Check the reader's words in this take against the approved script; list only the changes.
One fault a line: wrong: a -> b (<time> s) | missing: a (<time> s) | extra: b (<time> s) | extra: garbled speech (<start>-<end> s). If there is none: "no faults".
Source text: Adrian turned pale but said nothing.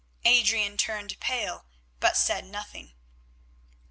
no faults